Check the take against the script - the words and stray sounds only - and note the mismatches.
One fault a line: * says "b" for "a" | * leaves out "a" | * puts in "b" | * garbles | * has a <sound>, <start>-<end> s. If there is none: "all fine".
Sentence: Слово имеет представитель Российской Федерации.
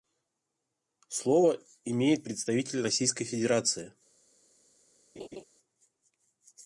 * has a laugh, 5.2-5.4 s